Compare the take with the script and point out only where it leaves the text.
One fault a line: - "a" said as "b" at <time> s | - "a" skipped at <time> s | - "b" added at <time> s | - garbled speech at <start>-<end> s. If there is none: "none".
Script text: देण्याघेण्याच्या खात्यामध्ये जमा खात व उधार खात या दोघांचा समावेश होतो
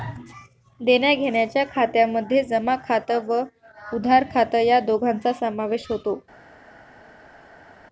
none